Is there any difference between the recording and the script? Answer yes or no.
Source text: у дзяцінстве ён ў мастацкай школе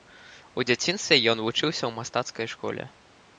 yes